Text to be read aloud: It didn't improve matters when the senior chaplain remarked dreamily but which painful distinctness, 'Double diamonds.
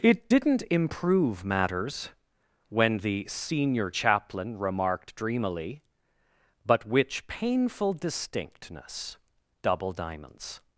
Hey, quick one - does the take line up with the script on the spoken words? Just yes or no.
yes